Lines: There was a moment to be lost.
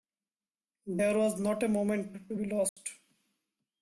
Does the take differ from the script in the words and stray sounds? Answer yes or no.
yes